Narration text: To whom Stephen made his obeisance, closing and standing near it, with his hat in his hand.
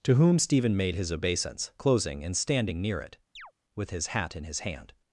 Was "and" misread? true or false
false